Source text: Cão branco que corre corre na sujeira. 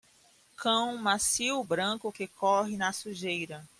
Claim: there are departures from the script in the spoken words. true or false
true